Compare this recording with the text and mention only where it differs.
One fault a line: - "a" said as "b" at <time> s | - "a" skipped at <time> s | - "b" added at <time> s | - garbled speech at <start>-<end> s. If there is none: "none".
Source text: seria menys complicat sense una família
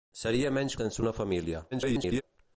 - "complicat" skipped at 0.7 s
- garbled speech at 1.7-2.2 s